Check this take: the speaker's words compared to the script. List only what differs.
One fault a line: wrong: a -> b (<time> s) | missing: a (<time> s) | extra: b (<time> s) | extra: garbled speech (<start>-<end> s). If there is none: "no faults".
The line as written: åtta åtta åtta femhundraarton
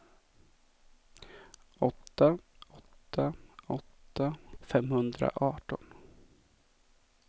no faults